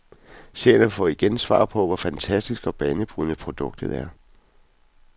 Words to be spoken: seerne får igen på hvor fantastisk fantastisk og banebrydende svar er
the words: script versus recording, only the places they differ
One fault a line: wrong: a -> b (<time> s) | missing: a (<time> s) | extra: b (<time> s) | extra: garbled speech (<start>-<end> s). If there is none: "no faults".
extra: svar (1.4 s)
missing: fantastisk (2.7 s)
wrong: svar -> produktet (3.4 s)